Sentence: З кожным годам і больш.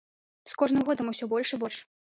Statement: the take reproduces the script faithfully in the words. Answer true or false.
false